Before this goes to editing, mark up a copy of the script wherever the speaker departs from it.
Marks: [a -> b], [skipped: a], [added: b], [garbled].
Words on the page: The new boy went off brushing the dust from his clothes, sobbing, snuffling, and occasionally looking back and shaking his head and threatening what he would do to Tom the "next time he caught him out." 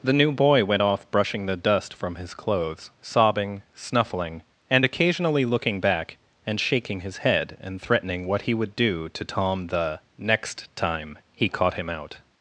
The new boy went off brushing the dust from his clothes, sobbing, snuffling, and occasionally looking back and shaking his head and threatening what he would do to Tom the "next time he caught him out."